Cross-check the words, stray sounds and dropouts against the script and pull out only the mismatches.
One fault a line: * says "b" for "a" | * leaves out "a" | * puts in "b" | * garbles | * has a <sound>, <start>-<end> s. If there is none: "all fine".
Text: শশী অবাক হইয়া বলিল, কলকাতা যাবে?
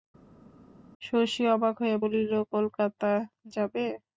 all fine